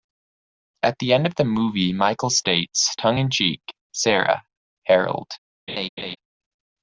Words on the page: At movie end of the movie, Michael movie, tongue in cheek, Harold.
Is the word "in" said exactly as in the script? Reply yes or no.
yes